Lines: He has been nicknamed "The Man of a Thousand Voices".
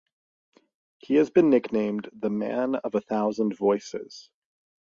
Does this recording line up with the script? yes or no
yes